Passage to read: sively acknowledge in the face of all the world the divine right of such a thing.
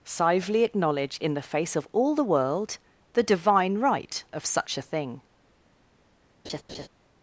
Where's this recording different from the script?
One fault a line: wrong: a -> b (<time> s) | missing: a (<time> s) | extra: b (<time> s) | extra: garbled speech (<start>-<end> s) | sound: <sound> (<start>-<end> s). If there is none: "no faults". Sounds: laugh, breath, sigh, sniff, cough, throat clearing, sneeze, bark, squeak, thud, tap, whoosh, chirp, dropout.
sound: laugh (6.4-6.9 s)